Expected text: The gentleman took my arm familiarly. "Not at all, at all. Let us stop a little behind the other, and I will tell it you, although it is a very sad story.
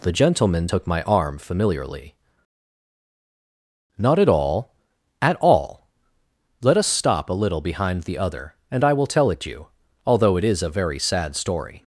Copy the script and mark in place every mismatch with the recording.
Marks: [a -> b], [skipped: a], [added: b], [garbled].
The gentleman took my arm familiarly. "Not at all, at all. Let us stop a little behind the other, and I will tell it you, although it is a very sad story.